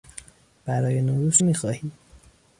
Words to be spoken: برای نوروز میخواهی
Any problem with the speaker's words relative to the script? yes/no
no